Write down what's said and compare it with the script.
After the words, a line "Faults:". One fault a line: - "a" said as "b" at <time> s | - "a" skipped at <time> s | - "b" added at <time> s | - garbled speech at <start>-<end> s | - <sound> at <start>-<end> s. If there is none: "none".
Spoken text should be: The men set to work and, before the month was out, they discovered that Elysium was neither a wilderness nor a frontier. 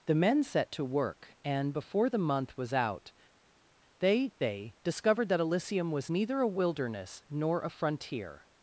The men set to work and, before the month was out, they they discovered that Elysium was neither a wilderness nor a frontier.
Faults:
- "they" added at 4.4 s